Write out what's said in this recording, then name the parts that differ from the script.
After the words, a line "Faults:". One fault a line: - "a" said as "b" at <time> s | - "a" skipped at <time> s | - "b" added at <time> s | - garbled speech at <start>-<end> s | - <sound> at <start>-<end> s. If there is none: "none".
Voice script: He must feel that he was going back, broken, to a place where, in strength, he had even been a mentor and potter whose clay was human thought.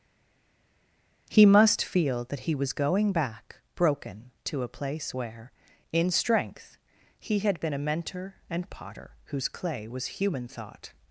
He must feel that he was going back, broken, to a place where, in strength, he had been a mentor and potter whose clay was human thought.
Faults:
- "even" skipped at 7.6 s